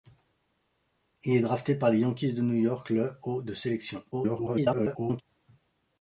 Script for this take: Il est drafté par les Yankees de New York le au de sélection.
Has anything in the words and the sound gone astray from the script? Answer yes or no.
yes